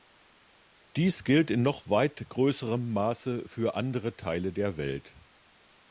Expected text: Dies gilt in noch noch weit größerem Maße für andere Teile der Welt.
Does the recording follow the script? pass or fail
fail